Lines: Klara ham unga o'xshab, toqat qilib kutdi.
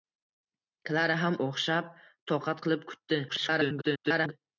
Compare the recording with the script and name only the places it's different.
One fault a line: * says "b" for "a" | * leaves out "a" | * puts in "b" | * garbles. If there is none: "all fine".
* leaves out "unga"
* garbles